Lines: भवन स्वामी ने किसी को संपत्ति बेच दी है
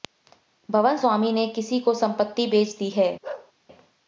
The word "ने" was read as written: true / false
true